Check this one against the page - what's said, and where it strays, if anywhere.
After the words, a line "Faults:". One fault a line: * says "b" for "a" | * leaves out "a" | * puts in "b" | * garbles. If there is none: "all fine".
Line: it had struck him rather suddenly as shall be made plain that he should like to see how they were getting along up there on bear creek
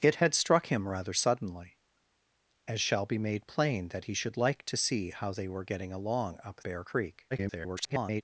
it had struck him rather suddenly as shall be made plain that he should like to see how they were getting along up bear creek [garbled]
Faults:
* leaves out "there on"
* garbles